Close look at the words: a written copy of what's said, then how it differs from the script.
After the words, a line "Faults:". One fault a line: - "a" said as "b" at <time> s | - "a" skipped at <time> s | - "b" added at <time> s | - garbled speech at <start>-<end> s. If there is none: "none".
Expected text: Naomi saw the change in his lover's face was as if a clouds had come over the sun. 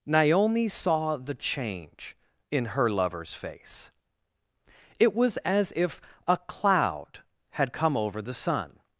Naomi saw the change in her lover's face it was as if a cloud had come over the sun.
Faults:
- "his" said as "her" at 2.6 s
- "it" added at 5.0 s
- "clouds" said as "cloud" at 6.3 s